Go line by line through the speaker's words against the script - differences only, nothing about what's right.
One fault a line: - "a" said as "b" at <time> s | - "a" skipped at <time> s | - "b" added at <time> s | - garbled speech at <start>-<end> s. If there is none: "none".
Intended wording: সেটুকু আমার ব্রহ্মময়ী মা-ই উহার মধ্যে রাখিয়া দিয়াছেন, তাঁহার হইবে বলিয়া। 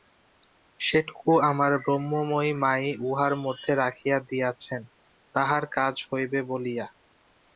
- "কাজ" added at 5.8 s